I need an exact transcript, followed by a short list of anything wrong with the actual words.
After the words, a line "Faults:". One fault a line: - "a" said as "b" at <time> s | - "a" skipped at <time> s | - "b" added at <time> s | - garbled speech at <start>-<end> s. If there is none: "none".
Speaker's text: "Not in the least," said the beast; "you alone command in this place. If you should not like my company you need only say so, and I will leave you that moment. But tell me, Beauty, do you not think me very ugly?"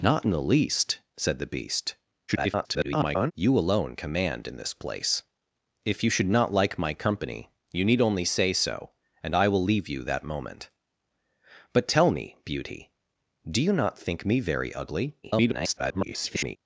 "Not in the least," said the beast; [garbled] "you alone command in this place. If you should not like my company you need only say so, and I will leave you that moment. But tell me, Beauty, do you not think me very ugly?" [garbled]
Faults:
- garbled speech at 2.3-3.3 s
- garbled speech at 15.2-16.6 s